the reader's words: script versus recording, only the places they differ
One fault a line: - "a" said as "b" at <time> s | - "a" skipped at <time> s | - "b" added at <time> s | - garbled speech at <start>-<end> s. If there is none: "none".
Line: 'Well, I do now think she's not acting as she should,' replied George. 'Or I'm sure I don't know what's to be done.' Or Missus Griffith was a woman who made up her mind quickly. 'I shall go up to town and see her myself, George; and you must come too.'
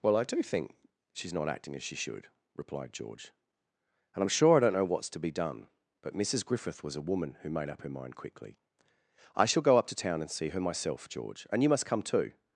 - "now" skipped at 0.4 s
- "Or" said as "And" at 4.1 s
- "Or" said as "But" at 6.0 s